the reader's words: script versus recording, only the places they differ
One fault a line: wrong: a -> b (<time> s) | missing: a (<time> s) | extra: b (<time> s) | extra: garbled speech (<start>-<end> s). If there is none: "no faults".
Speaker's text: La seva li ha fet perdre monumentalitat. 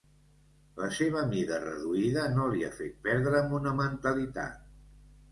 extra: mida reduïda no (1.3 s)